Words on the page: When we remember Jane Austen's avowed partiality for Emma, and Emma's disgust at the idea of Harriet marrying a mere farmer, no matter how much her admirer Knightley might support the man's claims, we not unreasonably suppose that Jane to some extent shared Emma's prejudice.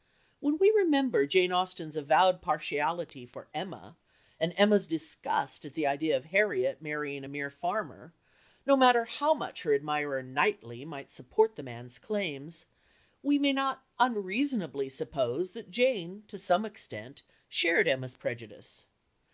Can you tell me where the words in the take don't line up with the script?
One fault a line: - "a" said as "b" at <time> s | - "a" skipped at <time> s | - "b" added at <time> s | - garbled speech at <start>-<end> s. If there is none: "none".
- "may" added at 13.4 s